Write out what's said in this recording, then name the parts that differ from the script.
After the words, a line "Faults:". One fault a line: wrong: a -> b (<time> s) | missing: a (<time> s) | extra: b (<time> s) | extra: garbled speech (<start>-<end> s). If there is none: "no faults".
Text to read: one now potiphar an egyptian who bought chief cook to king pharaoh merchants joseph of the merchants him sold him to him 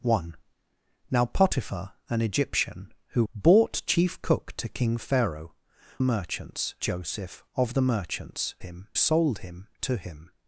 one now potiphar an egyptian who bought chief cook to king pharaoh merchants joseph of the merchants him sold him to him
Faults:
no faults